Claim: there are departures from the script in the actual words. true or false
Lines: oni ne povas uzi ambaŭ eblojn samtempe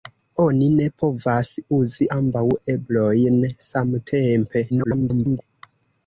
true